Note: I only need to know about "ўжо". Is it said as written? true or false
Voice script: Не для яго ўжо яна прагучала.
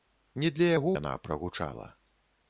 false